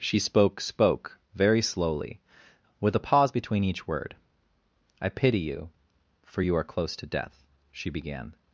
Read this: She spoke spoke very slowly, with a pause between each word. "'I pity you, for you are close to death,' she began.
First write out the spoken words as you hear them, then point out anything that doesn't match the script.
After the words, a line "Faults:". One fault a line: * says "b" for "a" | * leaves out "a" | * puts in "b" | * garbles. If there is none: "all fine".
She spoke spoke very slowly, with a pause between each word. "'I pity you, for you are close to death,' she began.
Faults:
all fine